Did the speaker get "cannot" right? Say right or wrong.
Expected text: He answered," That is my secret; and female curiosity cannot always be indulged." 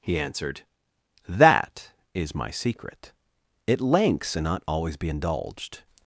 wrong